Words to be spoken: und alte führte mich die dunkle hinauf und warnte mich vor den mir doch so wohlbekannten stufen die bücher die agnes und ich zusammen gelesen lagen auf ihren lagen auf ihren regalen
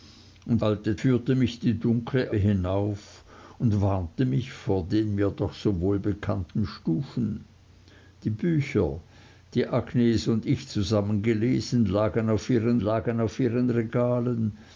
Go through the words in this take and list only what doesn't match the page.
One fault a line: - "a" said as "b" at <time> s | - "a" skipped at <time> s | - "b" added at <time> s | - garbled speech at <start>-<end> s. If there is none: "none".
none